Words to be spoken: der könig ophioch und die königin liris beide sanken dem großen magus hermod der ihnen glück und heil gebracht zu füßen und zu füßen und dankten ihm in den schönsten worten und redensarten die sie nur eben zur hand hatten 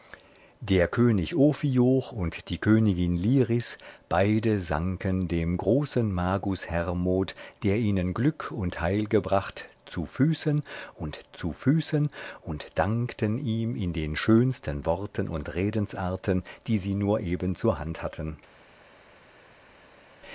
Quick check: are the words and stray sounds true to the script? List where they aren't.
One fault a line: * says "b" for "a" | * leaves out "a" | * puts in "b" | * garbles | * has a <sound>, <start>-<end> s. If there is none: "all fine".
all fine